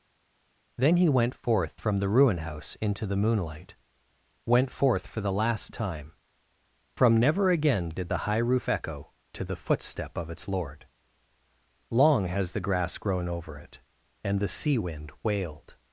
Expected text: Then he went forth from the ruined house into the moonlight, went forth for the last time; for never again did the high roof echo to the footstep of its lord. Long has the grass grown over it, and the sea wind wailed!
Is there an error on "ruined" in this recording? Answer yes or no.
yes